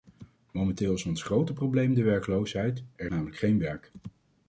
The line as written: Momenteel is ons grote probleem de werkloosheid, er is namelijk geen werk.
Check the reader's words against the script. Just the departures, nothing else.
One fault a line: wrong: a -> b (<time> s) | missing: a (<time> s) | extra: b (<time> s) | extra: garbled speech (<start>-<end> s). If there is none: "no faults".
missing: is (3.1 s)